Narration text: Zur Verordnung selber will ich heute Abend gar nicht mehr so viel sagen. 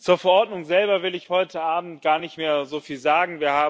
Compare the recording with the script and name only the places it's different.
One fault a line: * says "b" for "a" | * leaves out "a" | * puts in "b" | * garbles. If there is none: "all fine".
all fine